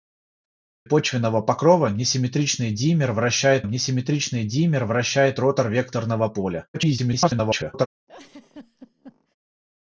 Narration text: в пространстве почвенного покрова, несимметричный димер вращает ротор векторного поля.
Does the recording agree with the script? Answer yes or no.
no